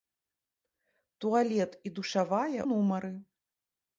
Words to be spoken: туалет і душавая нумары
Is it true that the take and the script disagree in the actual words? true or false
false